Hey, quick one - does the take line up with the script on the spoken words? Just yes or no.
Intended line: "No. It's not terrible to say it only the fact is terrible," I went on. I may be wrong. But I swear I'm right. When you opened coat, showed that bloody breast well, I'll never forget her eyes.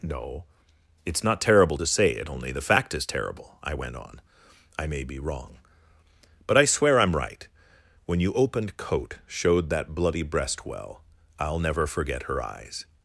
yes